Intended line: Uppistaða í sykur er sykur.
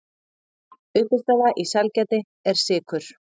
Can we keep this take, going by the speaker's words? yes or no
no